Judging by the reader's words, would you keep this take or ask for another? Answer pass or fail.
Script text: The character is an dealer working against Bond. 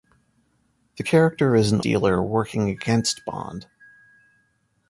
pass